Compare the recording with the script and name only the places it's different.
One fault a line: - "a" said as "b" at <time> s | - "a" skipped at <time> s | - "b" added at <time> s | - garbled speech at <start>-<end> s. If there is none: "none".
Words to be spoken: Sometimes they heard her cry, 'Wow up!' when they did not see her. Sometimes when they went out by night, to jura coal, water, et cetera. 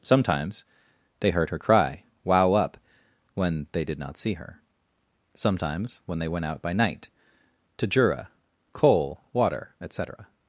none